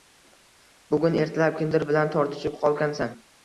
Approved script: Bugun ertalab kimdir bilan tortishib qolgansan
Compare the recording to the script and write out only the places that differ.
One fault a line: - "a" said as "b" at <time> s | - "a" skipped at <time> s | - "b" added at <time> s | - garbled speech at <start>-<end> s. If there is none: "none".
none